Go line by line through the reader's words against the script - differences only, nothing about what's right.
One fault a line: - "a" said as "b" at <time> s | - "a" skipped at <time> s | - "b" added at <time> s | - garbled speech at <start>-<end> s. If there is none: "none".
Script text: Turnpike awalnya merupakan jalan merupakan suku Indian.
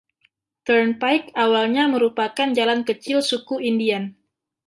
- "merupakan" said as "kecil" at 2.8 s